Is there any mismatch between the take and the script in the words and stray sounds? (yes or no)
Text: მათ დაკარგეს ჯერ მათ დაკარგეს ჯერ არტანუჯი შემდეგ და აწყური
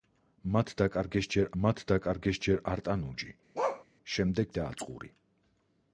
yes